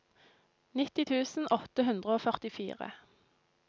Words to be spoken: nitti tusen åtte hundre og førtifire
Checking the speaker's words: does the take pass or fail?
pass